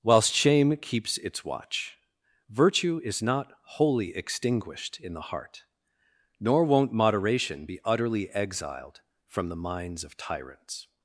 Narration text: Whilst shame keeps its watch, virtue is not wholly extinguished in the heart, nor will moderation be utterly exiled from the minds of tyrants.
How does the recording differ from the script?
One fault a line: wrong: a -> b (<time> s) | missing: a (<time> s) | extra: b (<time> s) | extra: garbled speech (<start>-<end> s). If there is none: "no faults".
wrong: will -> won't (6.6 s)